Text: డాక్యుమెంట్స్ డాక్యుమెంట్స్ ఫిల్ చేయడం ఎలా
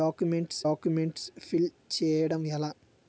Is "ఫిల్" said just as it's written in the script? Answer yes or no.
yes